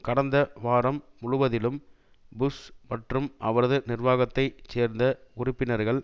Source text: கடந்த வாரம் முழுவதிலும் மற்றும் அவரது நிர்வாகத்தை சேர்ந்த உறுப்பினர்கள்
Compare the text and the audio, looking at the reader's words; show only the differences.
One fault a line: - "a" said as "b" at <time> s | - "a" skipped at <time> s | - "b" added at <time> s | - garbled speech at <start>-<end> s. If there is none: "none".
- "புஷ்" added at 2.3 s